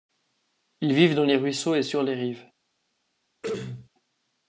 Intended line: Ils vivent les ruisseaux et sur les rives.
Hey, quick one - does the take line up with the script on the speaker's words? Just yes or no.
no